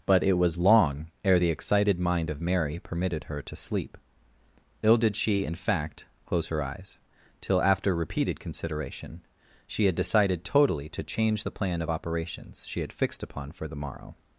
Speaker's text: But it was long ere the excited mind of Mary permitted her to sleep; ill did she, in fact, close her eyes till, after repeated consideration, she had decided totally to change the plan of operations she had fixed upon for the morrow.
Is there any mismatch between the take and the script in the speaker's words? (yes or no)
no